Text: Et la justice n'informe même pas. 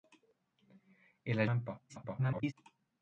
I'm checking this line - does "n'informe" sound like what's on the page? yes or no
no